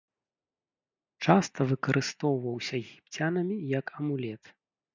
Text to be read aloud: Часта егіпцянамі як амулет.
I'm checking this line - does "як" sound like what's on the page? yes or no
yes